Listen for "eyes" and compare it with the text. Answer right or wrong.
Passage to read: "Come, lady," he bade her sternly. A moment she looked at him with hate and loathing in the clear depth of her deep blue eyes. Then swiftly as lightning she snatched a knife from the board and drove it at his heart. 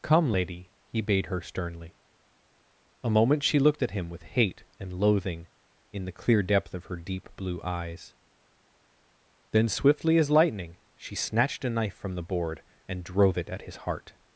right